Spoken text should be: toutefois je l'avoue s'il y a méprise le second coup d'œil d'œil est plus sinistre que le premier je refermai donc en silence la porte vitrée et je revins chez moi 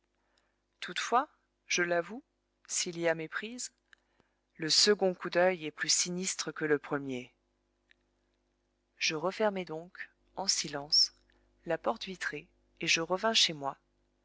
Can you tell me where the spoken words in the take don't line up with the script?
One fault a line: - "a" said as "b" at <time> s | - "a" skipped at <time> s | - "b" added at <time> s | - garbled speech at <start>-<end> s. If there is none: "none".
- "d'œil" skipped at 5.6 s